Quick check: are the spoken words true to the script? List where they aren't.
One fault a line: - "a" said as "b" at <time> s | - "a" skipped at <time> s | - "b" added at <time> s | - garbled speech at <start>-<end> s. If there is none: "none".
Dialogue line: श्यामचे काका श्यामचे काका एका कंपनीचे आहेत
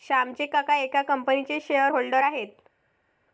- "श्यामचे काका एका कंपनीचे" said as "एका कंपनीचे शेअर होल्डर" at 0.8 s